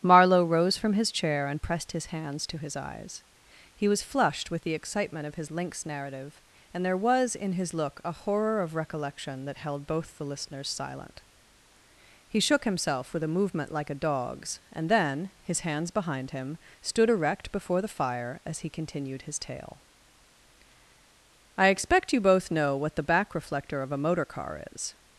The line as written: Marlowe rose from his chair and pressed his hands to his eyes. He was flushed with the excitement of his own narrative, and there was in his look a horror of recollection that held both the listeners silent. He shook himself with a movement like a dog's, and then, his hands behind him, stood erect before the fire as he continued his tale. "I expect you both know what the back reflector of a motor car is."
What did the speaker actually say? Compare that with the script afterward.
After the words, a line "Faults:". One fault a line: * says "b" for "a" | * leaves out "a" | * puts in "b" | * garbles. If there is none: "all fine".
Marlowe rose from his chair and pressed his hands to his eyes. He was flushed with the excitement of his lynx narrative, and there was in his look a horror of recollection that held both the listeners silent. He shook himself with a movement like a dog's, and then, his hands behind him, stood erect before the fire as he continued his tale. "I expect you both know what the back reflector of a motor car is."
Faults:
* says "lynx" for "own"